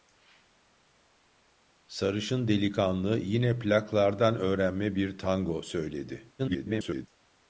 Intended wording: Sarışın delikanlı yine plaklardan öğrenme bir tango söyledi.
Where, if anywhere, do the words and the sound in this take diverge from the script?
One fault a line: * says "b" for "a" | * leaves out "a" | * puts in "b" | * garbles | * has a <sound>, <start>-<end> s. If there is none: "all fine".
* garbles